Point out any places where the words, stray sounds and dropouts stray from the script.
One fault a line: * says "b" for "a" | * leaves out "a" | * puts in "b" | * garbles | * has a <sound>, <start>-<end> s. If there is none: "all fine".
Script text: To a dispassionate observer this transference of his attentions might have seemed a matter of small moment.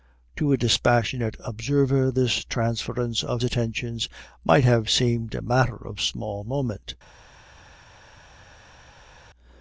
* leaves out "his"